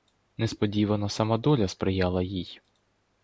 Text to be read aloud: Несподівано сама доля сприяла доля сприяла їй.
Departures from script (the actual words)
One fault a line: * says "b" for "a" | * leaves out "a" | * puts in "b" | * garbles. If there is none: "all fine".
* leaves out "доля сприяла"